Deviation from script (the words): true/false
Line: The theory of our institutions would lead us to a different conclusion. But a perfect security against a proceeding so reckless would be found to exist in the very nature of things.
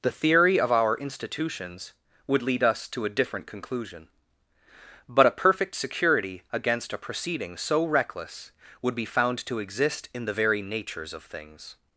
true